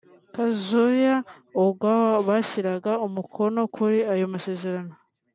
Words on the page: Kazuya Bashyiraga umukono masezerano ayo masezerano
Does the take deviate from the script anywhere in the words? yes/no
yes